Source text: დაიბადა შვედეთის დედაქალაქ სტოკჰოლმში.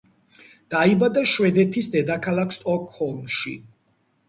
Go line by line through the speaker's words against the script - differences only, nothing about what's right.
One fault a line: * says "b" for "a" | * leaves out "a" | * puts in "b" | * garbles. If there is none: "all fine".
all fine